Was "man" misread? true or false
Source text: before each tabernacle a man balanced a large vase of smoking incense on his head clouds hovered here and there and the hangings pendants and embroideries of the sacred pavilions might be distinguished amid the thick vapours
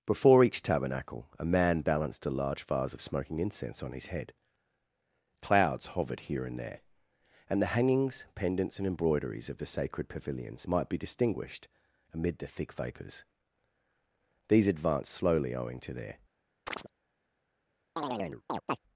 false